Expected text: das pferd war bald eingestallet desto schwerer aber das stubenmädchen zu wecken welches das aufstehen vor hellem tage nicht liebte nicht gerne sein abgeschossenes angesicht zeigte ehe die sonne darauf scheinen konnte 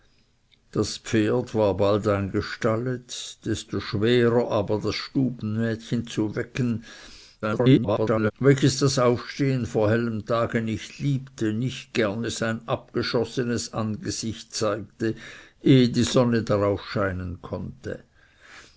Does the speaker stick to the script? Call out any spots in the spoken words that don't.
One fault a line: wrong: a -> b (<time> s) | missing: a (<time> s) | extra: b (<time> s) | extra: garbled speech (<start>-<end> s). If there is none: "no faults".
extra: garbled speech (7.4-8.3 s)